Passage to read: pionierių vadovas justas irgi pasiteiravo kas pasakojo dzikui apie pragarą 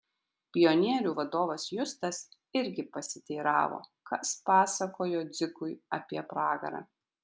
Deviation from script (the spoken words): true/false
false